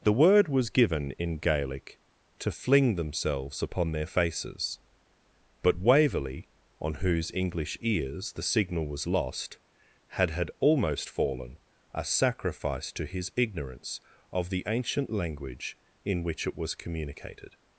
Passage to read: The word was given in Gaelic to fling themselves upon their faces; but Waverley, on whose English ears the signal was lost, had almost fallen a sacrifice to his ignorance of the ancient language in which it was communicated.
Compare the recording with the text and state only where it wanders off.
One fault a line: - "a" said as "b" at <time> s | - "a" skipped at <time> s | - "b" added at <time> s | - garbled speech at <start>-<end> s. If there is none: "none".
- "had" added at 10.3 s